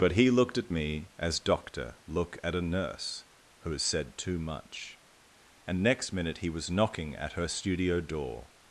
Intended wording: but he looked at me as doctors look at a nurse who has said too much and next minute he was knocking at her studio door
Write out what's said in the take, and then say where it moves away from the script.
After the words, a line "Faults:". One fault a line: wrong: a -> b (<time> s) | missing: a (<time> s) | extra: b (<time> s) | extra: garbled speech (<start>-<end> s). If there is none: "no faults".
but he looked at me as doctor look at a nurse who has said too much and next minute he was knocking at her studio door
Faults:
wrong: doctors -> doctor (1.4 s)